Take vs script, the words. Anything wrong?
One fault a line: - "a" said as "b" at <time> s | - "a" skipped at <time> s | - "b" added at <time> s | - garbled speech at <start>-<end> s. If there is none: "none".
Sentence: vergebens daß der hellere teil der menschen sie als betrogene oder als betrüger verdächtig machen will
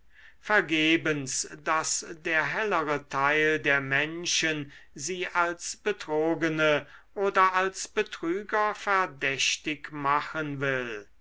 none